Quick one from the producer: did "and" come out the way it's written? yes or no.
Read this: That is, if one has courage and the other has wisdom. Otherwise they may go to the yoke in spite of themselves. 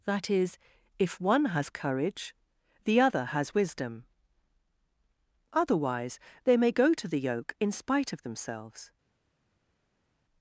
no